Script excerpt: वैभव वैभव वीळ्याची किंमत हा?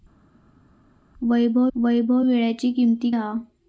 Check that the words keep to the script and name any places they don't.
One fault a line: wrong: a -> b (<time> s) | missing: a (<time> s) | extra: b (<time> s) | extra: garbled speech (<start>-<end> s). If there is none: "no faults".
no faults